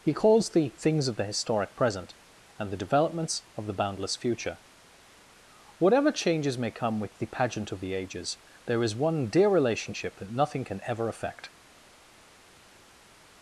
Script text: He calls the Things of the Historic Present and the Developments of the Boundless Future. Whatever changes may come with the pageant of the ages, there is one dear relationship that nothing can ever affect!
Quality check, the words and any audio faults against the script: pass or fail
pass